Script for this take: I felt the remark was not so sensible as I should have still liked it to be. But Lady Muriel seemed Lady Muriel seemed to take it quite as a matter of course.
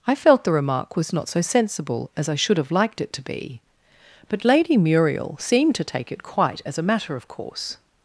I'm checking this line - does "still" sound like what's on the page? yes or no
no